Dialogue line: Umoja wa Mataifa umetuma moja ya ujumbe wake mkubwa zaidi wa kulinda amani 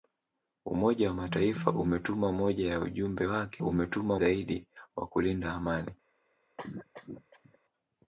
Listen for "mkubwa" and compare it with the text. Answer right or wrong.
wrong